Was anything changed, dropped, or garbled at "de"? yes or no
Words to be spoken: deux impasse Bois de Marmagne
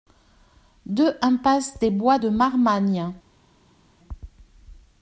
no